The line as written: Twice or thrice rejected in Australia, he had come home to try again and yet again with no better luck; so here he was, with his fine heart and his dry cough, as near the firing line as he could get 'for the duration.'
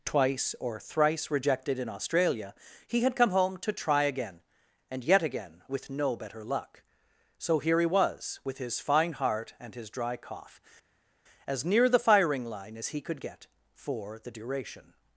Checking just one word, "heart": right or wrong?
right